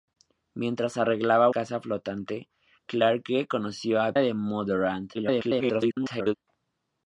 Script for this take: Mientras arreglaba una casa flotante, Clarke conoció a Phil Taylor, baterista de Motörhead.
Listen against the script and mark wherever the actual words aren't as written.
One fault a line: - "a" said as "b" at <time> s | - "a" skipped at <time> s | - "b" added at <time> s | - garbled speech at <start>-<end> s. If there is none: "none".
- "una" skipped at 1.5 s
- "Phil Taylor baterista" skipped at 4.1 s
- garbled speech at 5.1-6.4 s